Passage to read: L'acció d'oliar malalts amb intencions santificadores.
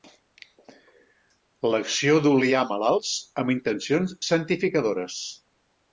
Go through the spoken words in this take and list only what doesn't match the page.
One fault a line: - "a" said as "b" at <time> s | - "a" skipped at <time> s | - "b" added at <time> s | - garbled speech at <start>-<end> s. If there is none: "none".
none